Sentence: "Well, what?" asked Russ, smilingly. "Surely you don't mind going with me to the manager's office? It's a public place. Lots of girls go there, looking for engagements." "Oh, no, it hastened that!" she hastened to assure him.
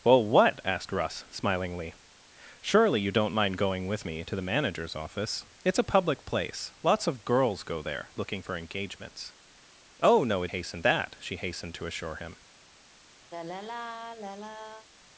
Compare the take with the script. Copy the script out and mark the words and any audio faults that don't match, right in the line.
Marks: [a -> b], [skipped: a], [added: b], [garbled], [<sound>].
"Well, what?" asked Russ, smilingly. "Surely you don't mind going with me to the manager's office? It's a public place. Lots of girls go there, looking for engagements." "Oh, no, it hastened that!" she hastened to assure him. [sigh]